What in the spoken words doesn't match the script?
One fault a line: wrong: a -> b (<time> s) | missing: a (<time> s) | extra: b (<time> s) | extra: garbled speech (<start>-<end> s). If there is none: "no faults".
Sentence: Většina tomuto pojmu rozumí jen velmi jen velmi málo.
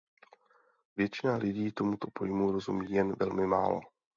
extra: lidí (1.4 s)
missing: jen velmi (3.5 s)